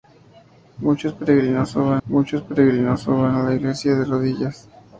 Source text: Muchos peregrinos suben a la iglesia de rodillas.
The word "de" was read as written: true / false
true